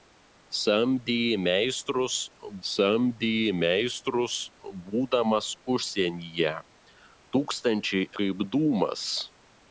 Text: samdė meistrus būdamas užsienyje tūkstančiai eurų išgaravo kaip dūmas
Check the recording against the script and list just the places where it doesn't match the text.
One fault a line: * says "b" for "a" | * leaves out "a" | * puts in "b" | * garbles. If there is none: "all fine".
* puts in "samdė meistrus"
* leaves out "eurų išgaravo"